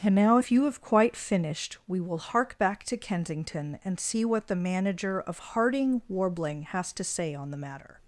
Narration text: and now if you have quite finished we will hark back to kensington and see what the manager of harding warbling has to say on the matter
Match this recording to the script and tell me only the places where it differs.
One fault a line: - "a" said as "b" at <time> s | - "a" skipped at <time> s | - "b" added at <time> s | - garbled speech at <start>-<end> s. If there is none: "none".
none